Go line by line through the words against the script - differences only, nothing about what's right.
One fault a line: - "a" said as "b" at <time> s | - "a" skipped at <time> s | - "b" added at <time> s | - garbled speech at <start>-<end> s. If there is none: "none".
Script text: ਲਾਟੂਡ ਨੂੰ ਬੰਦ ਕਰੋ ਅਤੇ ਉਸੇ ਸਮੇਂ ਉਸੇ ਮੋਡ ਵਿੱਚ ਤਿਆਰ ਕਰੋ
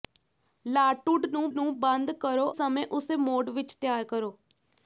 - "ਨੂੰ" added at 1.5 s
- "ਅਤੇ ਉਸੇ" skipped at 2.5 s